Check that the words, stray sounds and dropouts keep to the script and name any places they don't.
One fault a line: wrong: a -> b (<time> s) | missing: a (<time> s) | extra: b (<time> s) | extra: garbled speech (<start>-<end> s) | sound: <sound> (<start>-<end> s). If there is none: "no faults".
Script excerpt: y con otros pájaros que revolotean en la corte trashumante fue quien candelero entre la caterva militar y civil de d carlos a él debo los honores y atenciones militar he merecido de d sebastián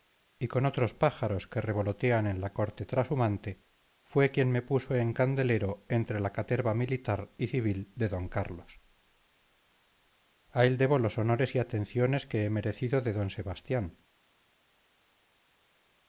extra: me puso en (4.5 s)
wrong: militar -> que (12.3 s)